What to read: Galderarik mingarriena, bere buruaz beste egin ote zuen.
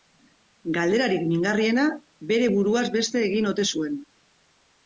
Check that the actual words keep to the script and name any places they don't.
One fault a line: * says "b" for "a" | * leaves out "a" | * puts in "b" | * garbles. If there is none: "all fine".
all fine